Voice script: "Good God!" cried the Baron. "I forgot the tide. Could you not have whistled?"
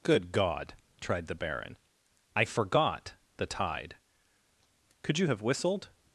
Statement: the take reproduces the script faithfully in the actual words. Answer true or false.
false